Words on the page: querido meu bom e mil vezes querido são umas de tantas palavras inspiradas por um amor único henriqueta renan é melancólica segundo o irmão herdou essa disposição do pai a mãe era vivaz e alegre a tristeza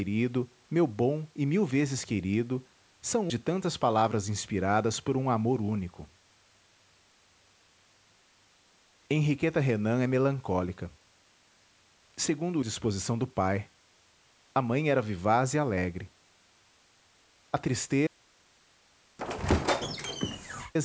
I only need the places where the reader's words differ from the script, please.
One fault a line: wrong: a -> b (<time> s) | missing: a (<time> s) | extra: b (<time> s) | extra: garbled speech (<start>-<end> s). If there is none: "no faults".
missing: umas (3.3 s)
missing: irmão herdou essa (12.6 s)